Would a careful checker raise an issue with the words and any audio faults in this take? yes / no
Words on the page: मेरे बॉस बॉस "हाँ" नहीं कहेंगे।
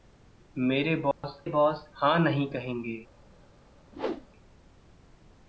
yes